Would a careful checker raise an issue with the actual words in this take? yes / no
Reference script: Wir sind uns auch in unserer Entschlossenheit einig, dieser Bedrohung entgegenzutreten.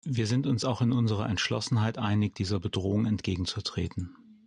no